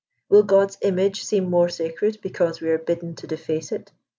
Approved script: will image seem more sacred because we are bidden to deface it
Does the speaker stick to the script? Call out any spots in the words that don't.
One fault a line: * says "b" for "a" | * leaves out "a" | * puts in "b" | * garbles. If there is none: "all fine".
* puts in "god's"